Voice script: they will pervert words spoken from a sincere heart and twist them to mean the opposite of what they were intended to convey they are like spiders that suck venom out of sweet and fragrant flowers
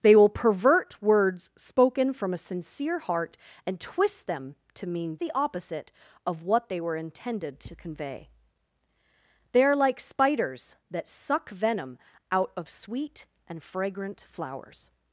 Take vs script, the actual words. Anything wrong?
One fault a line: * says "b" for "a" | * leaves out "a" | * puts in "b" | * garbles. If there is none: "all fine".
all fine